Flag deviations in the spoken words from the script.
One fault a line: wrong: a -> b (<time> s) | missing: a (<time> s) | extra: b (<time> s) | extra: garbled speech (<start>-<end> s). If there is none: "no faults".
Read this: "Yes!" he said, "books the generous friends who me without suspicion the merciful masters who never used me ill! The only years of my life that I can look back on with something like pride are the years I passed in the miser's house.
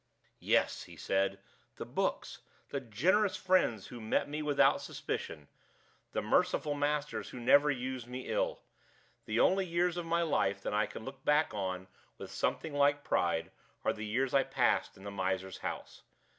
extra: the (1.8 s)
extra: met (4.0 s)